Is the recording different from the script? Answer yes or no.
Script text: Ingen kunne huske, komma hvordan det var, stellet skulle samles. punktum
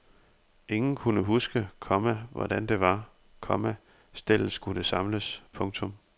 yes